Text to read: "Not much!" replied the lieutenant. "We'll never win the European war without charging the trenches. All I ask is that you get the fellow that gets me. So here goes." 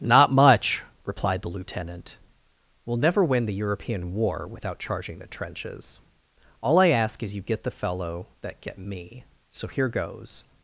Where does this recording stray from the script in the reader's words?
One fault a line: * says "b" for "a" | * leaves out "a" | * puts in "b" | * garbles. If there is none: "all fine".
* leaves out "that"
* says "get" for "gets"